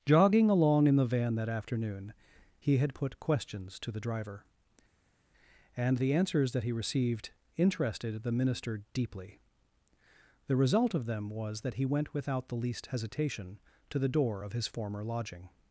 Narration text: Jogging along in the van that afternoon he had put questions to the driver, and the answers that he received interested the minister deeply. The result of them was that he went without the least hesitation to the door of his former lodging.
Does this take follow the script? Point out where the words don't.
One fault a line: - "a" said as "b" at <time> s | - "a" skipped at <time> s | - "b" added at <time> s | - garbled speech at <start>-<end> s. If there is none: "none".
none